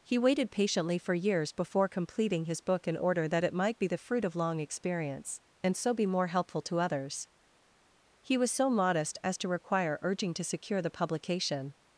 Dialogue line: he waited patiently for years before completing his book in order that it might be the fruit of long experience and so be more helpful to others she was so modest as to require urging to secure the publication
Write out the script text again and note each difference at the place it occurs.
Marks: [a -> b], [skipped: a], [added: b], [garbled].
he waited patiently for years before completing his book in order that it might be the fruit of long experience and so be more helpful to others [she -> he] was so modest as to require urging to secure the publication